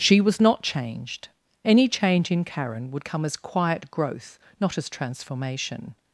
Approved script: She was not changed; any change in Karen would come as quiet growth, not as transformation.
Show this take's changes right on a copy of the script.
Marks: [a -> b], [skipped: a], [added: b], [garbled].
She was not changed; any change in Karen would come as quiet growth, not as transformation.